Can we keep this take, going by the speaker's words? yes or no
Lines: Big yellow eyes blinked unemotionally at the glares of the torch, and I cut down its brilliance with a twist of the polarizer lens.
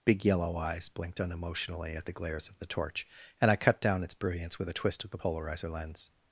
yes